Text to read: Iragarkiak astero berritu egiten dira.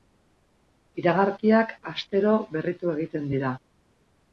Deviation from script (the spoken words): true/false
false